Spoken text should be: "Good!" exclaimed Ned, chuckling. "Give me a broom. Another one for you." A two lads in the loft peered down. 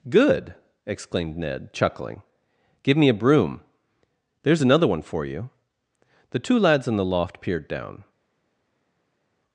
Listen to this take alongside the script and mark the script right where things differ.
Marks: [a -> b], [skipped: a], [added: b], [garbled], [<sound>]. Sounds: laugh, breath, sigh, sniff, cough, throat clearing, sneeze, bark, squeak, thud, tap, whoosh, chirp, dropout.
"Good!" exclaimed Ned, chuckling. "Give me a broom. [added: There's] Another one for you." [A -> The] two lads in the loft peered down.